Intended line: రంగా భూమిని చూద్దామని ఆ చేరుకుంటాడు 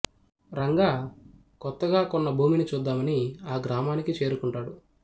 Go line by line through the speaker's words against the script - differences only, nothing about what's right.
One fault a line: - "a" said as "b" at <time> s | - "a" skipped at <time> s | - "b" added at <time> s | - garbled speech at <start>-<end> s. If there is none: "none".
- "కొత్తగా కొన్న" added at 1.6 s
- "గ్రామానికి" added at 3.6 s